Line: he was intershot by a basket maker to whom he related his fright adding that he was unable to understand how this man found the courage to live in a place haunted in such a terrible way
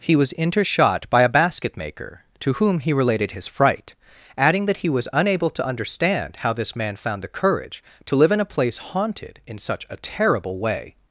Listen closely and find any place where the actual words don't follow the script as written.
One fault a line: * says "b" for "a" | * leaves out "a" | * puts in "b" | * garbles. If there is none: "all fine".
all fine